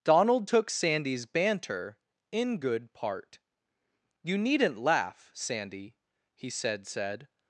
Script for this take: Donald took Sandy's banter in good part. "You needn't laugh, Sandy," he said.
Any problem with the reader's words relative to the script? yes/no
yes